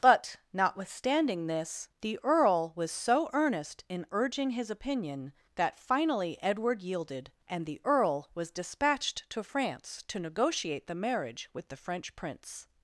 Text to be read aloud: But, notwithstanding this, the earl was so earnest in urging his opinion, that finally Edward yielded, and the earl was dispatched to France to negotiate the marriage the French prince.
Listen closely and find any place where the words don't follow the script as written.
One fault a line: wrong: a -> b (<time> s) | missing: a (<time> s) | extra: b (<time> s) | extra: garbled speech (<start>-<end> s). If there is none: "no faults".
extra: with (11.5 s)